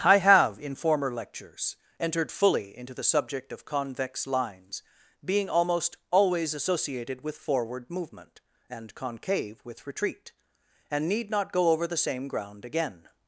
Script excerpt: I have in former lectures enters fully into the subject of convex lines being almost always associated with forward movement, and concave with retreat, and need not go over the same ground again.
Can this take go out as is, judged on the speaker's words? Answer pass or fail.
fail